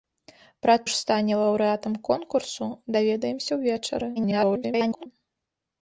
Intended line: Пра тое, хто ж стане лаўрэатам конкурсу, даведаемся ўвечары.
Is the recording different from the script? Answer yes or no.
yes